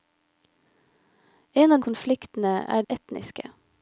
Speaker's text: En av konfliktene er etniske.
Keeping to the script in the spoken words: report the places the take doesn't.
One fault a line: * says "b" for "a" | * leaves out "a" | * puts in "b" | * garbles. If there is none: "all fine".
all fine